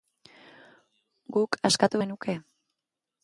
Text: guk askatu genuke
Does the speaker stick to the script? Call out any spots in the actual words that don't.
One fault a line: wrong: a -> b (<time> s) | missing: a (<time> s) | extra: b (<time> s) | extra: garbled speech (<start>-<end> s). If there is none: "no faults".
no faults